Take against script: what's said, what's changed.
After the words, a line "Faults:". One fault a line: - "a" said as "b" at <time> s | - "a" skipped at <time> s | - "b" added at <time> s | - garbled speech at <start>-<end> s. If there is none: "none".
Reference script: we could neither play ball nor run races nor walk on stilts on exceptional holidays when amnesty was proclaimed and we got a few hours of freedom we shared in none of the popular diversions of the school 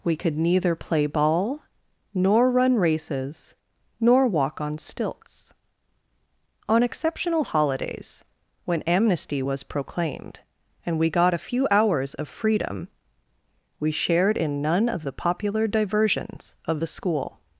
we could neither play ball nor run races nor walk on stilts on exceptional holidays when amnesty was proclaimed and we got a few hours of freedom we shared in none of the popular diversions of the school
Faults:
none